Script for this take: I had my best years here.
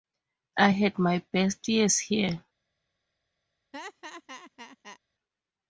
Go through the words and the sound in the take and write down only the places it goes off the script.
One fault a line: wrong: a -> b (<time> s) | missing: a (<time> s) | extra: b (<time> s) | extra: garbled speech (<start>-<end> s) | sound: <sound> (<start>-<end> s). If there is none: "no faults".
sound: laugh (3.7-5.0 s)